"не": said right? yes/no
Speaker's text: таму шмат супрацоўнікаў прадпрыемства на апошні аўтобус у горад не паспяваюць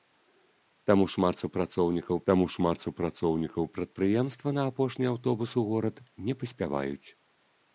yes